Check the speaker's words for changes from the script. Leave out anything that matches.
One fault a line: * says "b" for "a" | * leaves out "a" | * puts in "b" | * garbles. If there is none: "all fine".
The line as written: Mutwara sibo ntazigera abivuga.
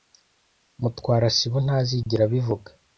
all fine